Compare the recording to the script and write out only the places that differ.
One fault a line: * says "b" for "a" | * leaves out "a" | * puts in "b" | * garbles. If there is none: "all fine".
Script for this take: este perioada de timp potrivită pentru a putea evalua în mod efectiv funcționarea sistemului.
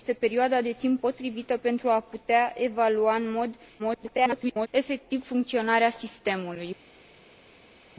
* garbles